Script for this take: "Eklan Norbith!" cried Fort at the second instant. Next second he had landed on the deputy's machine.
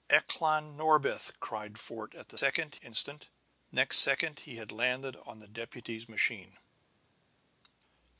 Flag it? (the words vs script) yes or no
no